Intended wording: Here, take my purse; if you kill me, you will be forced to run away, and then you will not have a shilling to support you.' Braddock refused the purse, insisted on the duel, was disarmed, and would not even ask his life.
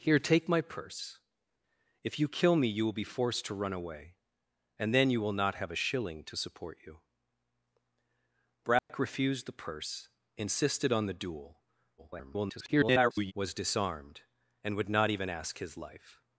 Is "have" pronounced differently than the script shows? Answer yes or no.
no